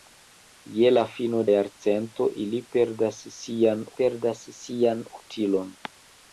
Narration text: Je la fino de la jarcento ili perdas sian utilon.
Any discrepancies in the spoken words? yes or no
yes